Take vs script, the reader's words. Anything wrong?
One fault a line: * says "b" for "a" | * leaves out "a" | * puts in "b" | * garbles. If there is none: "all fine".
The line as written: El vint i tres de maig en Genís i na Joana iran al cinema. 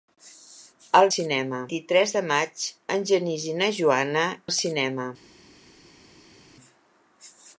* says "cinema" for "vint"
* leaves out "iran"